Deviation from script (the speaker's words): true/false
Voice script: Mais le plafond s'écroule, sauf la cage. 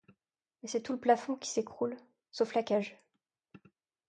true